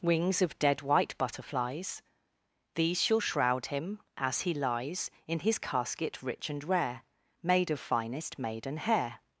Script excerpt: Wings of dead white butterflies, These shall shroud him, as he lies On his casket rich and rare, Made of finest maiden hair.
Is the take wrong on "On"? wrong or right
wrong